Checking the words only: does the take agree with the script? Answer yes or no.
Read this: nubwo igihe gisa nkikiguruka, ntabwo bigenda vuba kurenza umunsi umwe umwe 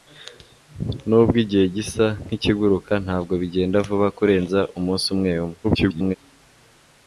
no